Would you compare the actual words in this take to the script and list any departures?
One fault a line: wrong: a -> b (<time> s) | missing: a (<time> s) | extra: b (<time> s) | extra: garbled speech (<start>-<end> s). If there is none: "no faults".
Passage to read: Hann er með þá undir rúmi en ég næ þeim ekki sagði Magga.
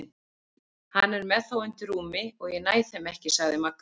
wrong: en -> og (2.4 s)